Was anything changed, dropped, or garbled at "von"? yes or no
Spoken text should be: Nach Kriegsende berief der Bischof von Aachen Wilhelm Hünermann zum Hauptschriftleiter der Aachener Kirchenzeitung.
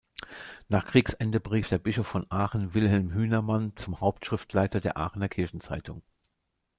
no